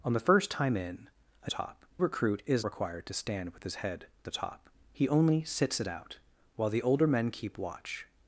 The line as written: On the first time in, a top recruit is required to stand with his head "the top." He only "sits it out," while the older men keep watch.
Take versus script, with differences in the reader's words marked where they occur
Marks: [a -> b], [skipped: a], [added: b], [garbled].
On the first time in, a top recruit is required to stand with his head "the top." He only "sits it out," while the older men keep watch.